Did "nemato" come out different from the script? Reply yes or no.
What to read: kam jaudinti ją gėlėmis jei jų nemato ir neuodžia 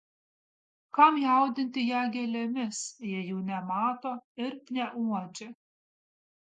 no